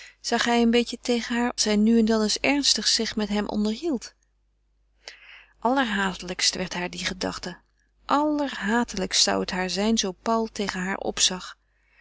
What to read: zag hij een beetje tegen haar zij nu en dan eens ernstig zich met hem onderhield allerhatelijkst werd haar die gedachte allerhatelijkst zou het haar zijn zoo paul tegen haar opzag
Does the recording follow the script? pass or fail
pass